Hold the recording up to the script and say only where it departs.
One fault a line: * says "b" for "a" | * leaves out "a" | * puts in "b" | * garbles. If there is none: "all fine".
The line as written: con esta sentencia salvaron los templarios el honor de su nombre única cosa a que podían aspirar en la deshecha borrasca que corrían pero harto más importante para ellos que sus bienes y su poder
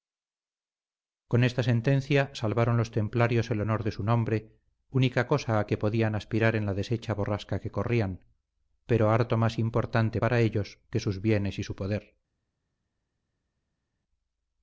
all fine